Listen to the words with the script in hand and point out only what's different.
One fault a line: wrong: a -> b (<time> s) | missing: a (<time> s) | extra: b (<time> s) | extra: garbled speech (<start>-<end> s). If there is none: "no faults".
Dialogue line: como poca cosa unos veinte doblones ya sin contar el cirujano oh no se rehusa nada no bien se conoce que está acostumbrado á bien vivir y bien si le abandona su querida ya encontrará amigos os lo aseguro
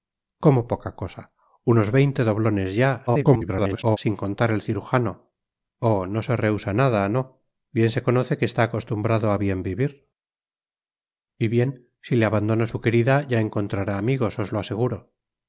extra: garbled speech (3.1-4.0 s)